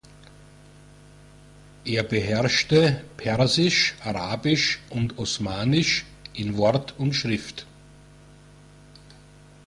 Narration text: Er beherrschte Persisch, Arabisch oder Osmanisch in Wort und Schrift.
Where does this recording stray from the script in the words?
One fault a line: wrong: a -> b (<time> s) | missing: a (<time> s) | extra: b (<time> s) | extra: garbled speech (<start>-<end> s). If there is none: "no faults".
wrong: oder -> und (4.9 s)